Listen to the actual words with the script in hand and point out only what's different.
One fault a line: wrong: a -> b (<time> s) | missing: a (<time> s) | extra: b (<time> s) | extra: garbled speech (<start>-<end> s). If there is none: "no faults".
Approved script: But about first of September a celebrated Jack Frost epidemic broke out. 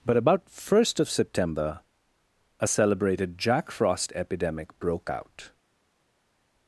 no faults